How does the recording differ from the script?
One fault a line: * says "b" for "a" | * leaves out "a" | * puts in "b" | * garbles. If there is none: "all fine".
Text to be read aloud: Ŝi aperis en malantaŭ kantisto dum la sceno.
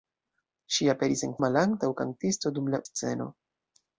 all fine